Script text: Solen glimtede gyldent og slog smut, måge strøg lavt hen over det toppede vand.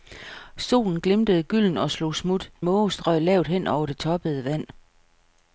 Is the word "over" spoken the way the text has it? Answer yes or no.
yes